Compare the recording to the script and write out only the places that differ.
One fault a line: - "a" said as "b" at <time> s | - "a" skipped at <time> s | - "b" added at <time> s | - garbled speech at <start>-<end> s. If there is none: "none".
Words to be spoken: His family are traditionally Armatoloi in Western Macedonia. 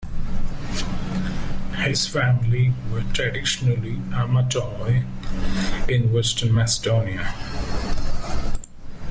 - "are" said as "were" at 2.9 s